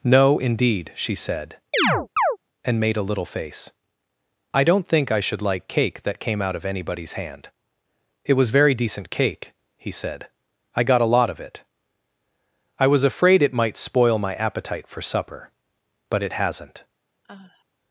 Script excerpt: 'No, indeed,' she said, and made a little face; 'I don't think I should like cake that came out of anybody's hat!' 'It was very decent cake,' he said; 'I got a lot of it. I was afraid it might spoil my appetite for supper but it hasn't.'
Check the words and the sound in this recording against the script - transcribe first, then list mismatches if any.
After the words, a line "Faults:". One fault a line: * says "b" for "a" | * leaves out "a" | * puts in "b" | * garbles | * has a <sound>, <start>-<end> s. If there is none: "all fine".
'No, indeed,' she said, and made a little face; 'I don't think I should like cake that came out of anybody's hand!' 'It was very decent cake,' he said; 'I got a lot of it. I was afraid it might spoil my appetite for supper but it hasn't.'
Faults:
* has a chirp, 1.7-2.4 s
* says "hand" for "hat"
* has a sigh, 17.2-17.7 s